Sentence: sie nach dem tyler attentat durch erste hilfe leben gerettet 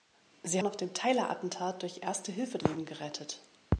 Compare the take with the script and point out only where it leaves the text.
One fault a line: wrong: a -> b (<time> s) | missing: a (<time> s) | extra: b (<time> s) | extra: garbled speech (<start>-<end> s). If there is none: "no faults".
no faults